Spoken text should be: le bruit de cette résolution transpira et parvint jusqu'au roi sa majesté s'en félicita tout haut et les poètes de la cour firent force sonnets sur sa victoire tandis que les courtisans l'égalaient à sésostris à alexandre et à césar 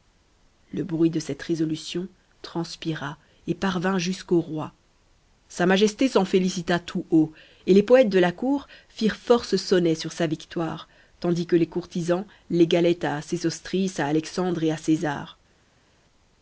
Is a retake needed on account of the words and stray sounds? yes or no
no